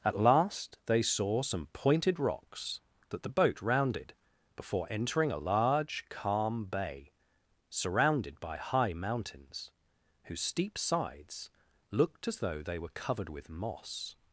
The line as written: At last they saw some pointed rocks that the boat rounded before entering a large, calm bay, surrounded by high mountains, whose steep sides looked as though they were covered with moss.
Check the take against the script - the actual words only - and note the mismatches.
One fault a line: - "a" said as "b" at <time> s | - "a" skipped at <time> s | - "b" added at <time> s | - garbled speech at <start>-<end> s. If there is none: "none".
none